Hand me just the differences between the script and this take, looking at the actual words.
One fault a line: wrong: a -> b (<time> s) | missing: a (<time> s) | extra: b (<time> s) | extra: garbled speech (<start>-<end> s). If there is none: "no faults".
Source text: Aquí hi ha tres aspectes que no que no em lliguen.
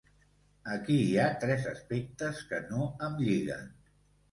missing: que no (2.9 s)